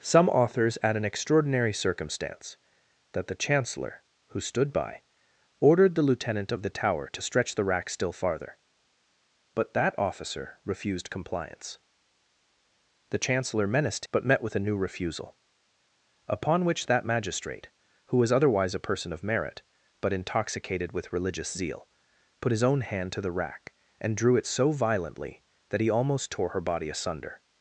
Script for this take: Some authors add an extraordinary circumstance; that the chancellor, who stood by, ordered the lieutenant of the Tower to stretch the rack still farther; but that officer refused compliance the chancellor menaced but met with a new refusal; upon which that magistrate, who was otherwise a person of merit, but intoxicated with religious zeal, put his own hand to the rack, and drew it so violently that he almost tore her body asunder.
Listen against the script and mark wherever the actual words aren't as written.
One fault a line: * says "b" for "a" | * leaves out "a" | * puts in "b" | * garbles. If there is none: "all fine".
all fine